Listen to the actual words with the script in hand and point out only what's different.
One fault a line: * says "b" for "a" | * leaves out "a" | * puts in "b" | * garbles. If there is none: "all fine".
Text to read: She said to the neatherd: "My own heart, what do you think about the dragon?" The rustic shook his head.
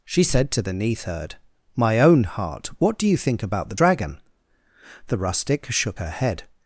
* says "her" for "his"